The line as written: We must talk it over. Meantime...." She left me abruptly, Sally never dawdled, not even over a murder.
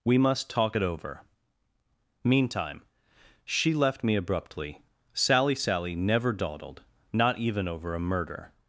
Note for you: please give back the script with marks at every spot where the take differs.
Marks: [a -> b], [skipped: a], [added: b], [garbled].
We must talk it over. Meantime...." She left me abruptly, Sally [added: Sally] never dawdled, not even over a murder.